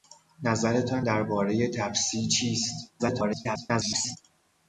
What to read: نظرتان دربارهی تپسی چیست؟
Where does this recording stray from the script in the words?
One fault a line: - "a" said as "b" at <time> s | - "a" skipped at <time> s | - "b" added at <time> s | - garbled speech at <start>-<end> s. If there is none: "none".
- garbled speech at 3.0-4.2 s